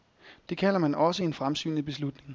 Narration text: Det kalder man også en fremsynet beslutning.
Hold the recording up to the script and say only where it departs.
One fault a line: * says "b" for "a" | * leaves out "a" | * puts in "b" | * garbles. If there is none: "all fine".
all fine